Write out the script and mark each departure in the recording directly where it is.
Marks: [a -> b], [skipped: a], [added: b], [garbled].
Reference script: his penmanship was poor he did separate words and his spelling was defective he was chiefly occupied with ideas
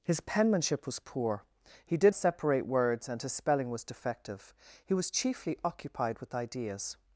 his penmanship was poor he did separate words and his spelling was defective he was chiefly occupied with ideas